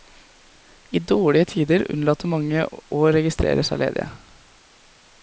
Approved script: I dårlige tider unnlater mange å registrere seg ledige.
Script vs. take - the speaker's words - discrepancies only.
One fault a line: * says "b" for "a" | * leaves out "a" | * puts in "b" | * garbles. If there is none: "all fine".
all fine